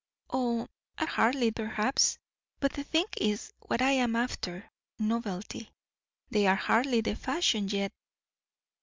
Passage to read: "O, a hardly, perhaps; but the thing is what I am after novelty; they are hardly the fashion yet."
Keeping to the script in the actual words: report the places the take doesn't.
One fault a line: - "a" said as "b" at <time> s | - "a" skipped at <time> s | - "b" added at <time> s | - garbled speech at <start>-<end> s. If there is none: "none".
none